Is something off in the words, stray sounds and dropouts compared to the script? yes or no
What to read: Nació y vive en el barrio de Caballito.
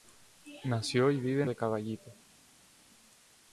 yes